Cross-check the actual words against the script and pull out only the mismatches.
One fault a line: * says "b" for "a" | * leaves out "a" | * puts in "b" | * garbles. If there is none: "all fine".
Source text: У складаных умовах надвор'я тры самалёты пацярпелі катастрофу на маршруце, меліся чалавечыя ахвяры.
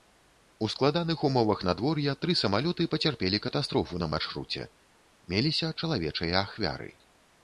all fine